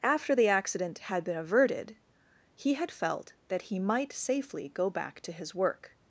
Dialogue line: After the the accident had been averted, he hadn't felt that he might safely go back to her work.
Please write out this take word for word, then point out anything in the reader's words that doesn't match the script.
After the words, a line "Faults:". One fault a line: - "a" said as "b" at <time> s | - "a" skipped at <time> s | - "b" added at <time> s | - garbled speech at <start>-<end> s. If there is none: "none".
After the accident had been averted, he had felt that he might safely go back to his work.
Faults:
- "the" skipped at 0.5 s
- "hadn't" said as "had" at 2.7 s
- "her" said as "his" at 5.3 s